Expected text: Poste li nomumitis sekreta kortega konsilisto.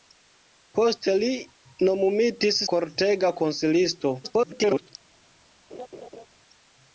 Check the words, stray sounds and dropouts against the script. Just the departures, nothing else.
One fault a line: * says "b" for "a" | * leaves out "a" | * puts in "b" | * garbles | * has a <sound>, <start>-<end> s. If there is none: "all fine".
* leaves out "sekreta"
* garbles
* has a laugh, 5.7-6.3 s